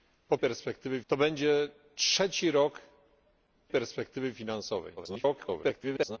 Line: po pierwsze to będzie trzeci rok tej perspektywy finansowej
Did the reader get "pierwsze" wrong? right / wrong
wrong